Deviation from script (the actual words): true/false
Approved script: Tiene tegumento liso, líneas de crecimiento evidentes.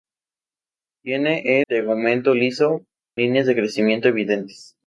false